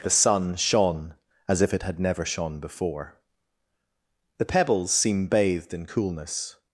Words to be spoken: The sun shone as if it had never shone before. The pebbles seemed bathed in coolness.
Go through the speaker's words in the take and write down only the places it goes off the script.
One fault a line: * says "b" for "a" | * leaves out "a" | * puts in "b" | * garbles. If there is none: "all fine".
* says "seem" for "seemed"